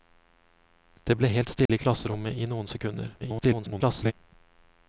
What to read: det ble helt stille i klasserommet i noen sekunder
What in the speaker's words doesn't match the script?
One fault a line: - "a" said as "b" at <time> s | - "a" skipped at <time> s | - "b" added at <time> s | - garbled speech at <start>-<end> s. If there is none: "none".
- garbled speech at 3.2-4.1 s